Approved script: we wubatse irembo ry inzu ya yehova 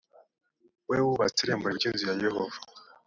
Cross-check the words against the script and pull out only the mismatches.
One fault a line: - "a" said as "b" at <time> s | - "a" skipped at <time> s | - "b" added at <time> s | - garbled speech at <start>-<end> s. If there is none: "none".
none